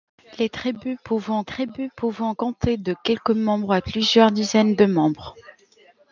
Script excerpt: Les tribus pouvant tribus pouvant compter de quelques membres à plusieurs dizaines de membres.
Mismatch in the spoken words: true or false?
false